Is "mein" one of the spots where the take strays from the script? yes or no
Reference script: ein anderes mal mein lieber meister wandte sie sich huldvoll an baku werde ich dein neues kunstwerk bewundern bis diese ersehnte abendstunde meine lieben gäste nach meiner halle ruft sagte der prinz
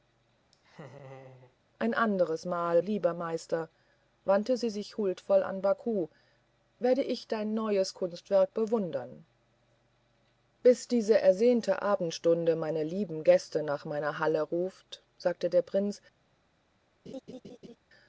yes